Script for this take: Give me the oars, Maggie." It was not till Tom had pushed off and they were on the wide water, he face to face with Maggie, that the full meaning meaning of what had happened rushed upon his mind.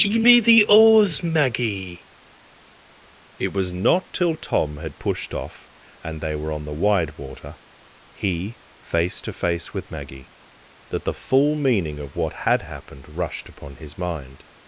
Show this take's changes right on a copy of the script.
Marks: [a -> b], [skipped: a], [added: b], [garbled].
Give me the oars, Maggie." It was not till Tom had pushed off and they were on the wide water, he face to face with Maggie, that the full meaning [skipped: meaning] of what had happened rushed upon his mind.